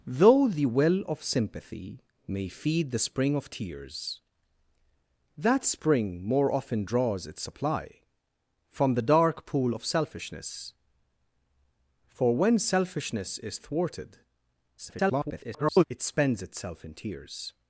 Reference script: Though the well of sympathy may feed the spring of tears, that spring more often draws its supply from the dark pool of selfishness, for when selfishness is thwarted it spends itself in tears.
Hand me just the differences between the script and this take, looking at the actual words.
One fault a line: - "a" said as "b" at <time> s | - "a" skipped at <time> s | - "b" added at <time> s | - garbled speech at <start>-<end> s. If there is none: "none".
- garbled speech at 14.8-15.8 s